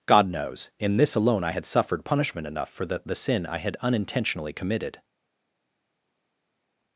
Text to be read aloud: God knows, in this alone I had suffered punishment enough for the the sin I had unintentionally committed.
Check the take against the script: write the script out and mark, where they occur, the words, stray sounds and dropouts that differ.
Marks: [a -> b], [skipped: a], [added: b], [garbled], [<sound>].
God knows, in this alone I had suffered punishment enough for the the sin I had unintentionally committed.